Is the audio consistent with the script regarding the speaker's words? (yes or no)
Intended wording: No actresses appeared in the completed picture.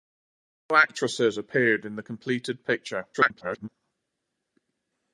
no